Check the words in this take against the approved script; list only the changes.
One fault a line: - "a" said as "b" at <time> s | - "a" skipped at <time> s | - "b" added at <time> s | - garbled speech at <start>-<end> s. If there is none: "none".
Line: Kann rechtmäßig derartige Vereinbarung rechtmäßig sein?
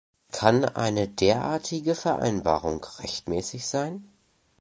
- "rechtmäßig" said as "eine" at 0.7 s